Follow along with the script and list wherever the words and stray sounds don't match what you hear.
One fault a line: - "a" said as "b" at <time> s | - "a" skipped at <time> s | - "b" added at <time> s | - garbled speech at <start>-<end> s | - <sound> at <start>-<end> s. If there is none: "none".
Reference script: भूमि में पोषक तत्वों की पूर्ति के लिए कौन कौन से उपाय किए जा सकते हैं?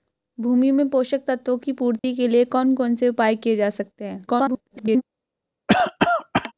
- dropout at 2.0-2.0 s
- garbled speech at 4.3-5.0 s
- cough at 5.7-6.5 s